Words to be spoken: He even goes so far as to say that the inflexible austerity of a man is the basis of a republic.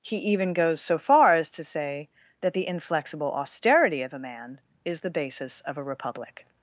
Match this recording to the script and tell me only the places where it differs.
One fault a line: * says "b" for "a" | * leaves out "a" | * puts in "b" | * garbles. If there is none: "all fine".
all fine